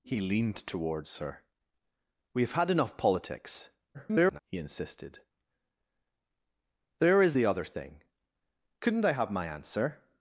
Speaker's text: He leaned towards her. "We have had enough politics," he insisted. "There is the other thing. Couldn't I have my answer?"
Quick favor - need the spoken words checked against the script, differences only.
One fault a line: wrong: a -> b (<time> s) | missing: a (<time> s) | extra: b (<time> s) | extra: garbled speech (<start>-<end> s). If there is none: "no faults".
extra: garbled speech (3.9-4.4 s)